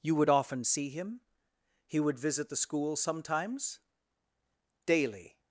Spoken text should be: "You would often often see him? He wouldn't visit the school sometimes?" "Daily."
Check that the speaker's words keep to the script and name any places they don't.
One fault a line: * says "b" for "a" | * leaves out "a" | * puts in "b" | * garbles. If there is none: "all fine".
* leaves out "often"
* says "would" for "wouldn't"